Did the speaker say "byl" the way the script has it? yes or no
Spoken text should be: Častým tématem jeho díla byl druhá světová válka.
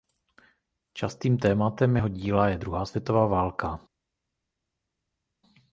no